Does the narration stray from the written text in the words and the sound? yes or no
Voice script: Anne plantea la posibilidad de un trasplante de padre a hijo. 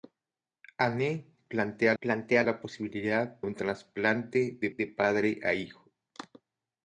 yes